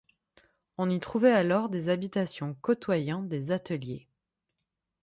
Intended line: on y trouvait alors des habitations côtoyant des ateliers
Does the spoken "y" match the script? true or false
true